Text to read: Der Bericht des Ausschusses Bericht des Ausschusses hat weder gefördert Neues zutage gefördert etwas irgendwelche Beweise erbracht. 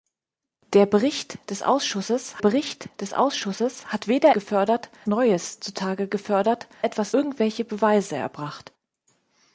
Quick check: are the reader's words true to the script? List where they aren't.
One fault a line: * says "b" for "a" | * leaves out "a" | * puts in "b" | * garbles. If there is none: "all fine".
all fine